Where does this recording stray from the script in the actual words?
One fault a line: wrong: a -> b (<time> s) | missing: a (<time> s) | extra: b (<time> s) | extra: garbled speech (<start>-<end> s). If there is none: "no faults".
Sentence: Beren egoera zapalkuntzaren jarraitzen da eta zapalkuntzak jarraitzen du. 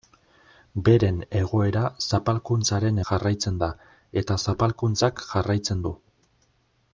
no faults